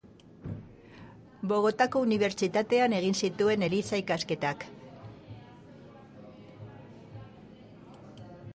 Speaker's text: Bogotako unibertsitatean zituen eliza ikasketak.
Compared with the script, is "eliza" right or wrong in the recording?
right